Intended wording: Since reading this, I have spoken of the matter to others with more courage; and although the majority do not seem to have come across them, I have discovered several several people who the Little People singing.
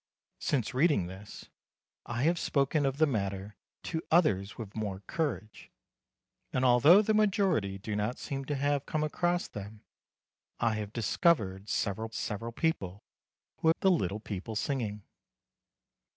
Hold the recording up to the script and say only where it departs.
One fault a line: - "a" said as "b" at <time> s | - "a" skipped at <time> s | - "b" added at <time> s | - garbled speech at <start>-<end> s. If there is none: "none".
none